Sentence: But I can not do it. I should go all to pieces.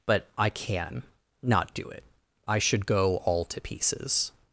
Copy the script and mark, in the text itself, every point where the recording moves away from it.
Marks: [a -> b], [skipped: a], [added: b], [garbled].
But I can not do it. I should go all to pieces.